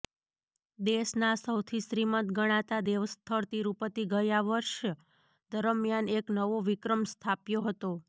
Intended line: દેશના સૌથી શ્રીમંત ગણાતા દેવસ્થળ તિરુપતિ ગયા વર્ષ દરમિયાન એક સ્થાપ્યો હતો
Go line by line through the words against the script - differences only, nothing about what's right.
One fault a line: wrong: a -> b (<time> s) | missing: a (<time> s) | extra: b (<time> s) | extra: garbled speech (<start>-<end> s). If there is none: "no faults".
extra: નવો વિક્રમ (6.4 s)